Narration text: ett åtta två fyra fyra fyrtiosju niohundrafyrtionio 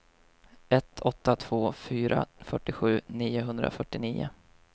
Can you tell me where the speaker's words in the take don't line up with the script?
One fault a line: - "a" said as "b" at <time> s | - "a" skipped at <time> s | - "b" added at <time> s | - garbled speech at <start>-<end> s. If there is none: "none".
- "fyra" skipped at 2.2 s